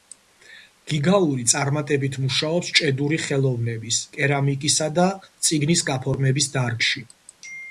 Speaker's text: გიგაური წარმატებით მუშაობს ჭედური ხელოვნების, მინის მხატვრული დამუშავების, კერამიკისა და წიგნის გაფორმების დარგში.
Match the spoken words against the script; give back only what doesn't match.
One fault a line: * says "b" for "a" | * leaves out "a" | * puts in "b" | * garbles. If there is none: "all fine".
* leaves out "მინის მხატვრული დამუშავების"